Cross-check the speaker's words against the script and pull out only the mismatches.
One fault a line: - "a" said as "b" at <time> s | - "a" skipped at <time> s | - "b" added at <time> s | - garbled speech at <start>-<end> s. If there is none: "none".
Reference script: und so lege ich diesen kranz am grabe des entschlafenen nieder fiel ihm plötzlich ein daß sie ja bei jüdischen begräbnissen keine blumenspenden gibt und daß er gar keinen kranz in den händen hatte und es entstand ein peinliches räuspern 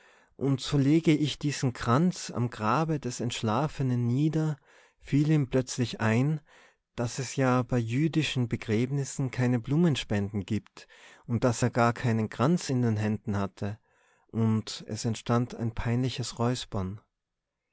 - "sie" said as "es" at 7.2 s